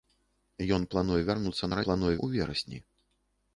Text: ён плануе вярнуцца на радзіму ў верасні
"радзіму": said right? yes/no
no